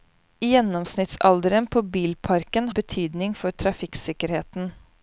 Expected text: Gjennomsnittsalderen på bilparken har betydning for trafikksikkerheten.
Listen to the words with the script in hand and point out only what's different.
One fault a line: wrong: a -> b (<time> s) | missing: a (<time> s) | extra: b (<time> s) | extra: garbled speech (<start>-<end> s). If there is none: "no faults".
missing: har (2.7 s)